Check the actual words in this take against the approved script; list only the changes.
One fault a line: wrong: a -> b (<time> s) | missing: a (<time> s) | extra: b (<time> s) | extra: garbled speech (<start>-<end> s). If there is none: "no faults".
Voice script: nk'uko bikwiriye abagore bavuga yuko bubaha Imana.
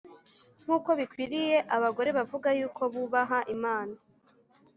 no faults